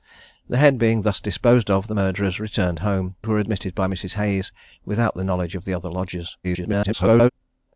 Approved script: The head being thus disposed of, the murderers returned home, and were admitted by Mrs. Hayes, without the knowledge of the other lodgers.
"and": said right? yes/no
no